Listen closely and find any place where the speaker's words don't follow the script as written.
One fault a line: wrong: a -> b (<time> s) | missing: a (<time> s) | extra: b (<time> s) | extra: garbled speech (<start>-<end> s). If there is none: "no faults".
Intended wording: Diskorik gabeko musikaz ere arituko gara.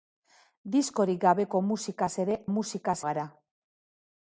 wrong: arituko -> musikaz (2.5 s)